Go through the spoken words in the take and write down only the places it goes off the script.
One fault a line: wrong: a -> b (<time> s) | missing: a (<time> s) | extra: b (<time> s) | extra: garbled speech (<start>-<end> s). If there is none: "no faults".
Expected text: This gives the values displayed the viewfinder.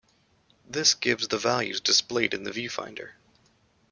extra: in (2.3 s)